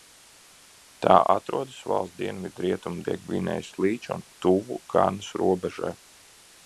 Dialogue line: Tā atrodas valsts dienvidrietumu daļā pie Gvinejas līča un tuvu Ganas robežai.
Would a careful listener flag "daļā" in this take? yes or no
yes